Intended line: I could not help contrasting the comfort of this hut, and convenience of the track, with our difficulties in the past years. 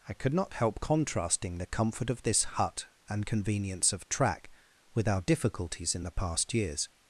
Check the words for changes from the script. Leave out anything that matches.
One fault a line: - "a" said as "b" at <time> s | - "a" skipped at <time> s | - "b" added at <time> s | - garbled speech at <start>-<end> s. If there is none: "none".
- "the" skipped at 4.1 s